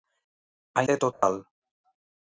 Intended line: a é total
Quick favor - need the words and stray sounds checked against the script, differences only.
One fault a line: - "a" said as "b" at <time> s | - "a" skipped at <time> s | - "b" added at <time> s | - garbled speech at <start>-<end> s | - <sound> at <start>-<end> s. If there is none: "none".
- dropout at 1.1-1.2 s